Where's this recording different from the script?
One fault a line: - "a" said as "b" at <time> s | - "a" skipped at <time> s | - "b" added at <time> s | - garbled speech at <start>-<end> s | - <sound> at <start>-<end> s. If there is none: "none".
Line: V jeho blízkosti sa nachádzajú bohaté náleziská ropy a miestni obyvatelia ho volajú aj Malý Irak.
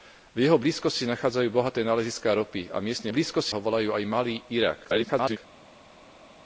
- "obyvatelia" said as "blízkosti" at 3.1 s
- garbled speech at 4.8-5.4 s